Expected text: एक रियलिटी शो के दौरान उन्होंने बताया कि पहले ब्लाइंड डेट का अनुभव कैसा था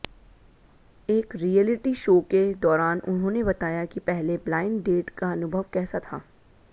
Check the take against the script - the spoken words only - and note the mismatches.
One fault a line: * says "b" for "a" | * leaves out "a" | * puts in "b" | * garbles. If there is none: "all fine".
all fine